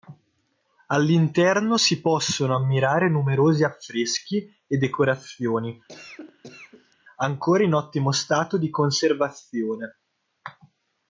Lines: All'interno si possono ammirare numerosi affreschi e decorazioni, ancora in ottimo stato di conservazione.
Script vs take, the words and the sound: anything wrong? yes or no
yes